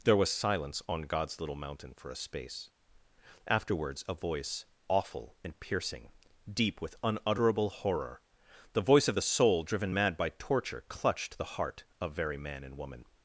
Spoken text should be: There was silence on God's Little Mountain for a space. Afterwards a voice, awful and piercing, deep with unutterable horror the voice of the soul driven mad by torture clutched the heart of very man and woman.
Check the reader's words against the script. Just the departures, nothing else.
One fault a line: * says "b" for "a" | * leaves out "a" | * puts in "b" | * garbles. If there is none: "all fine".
all fine